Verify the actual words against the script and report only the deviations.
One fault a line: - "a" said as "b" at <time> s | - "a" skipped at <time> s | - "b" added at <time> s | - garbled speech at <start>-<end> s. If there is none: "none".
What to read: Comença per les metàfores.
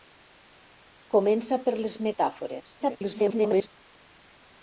- garbled speech at 2.8-3.7 s